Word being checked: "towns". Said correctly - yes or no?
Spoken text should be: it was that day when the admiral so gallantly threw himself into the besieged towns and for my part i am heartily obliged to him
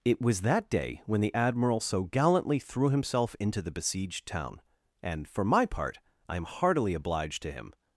no